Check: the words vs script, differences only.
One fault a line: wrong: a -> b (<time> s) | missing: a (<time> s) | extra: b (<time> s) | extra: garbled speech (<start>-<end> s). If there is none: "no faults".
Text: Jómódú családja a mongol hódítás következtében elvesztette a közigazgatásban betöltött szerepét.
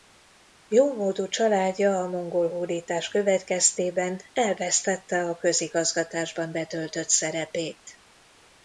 no faults